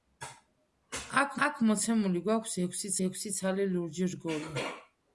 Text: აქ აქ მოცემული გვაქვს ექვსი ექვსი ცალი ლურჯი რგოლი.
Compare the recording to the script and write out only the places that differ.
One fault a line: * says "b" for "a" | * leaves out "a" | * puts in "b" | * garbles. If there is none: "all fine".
all fine